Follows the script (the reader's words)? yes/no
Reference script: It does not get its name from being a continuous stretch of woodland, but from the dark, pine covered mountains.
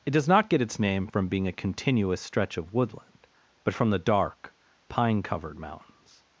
yes